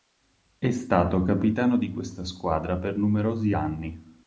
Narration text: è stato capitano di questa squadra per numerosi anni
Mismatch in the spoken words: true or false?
false